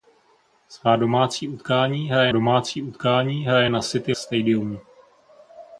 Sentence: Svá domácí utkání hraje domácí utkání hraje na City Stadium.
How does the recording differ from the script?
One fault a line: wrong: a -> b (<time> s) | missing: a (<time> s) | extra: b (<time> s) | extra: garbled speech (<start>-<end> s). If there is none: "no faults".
no faults